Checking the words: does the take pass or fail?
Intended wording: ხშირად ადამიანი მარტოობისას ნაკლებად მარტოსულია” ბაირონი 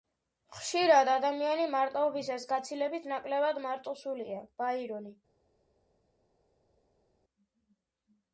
fail